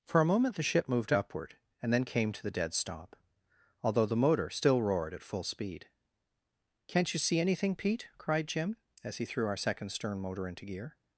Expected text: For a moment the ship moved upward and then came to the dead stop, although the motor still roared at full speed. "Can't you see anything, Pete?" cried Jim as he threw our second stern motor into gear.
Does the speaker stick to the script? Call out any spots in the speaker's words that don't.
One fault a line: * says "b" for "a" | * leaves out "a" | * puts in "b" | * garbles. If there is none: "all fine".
all fine